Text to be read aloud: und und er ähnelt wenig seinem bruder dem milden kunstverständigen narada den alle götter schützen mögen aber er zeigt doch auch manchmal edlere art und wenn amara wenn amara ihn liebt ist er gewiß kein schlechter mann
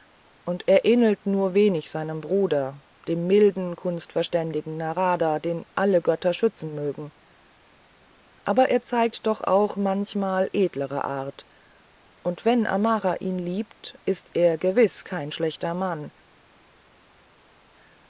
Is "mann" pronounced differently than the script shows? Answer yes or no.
no